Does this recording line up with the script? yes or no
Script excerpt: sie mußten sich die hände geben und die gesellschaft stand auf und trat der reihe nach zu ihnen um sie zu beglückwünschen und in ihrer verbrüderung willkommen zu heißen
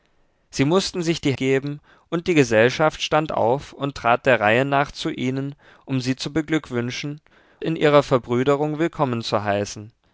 no